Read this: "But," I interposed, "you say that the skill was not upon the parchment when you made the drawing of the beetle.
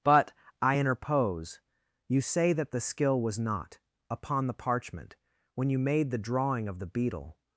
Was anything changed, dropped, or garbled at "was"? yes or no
no